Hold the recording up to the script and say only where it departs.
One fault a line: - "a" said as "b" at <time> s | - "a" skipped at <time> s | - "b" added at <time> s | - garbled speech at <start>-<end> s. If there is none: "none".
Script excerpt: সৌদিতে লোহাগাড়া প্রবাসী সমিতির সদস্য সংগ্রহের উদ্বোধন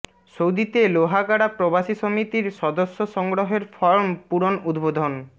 - "ফরম পূরণ" added at 3.7 s